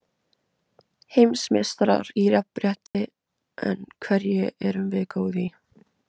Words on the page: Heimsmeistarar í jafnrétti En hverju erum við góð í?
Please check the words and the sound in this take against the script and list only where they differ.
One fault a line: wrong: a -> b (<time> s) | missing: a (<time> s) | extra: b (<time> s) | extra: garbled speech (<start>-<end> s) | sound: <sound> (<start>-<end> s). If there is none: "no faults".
sound: dropout (2.9-2.9 s)